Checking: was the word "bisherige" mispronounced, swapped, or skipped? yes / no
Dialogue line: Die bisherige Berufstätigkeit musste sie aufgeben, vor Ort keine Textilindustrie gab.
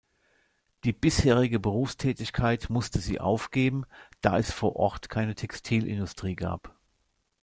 no